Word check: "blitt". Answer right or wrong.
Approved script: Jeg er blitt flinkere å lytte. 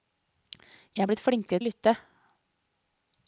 right